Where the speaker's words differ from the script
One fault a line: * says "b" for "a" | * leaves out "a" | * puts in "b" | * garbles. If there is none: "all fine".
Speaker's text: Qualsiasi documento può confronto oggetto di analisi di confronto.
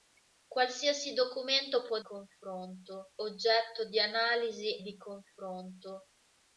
all fine